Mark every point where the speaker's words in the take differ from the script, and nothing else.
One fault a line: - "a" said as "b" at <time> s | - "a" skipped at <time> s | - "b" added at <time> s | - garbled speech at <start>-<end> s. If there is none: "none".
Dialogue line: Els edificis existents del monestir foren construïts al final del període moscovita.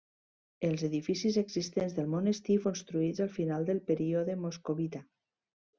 - "foren" skipped at 2.6 s